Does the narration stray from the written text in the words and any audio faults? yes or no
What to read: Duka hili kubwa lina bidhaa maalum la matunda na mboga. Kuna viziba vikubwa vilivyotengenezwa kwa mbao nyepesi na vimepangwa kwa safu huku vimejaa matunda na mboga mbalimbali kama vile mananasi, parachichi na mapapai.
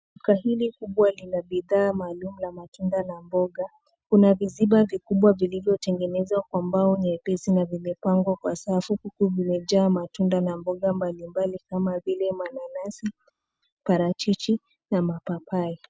no